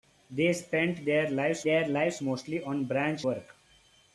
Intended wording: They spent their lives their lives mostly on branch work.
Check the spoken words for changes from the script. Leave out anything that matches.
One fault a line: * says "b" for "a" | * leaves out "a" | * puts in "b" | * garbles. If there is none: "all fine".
all fine